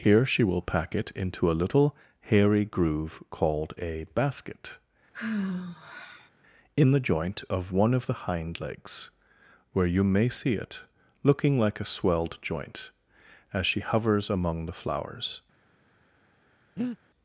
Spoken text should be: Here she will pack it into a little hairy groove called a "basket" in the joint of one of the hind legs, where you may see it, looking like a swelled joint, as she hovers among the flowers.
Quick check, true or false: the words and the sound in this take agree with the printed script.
false